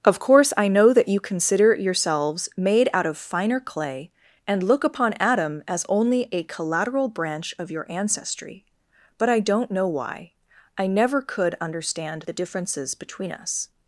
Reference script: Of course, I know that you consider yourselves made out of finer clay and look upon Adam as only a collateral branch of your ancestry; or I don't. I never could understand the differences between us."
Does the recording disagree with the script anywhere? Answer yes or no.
yes